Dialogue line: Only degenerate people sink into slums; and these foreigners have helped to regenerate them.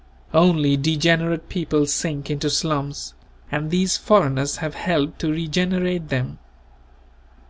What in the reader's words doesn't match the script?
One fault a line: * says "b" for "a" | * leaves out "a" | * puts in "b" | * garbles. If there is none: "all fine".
all fine